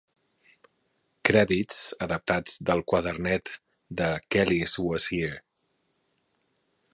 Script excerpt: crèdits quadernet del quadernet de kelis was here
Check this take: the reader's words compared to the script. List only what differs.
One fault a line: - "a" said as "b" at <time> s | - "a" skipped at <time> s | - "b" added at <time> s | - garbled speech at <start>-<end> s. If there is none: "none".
- "quadernet" said as "adaptats" at 2.0 s